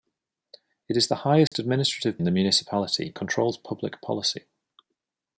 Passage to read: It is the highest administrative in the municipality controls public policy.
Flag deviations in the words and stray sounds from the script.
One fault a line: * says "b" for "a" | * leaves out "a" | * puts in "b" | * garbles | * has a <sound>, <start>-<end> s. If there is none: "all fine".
* has a dropout, 1.5-1.5 s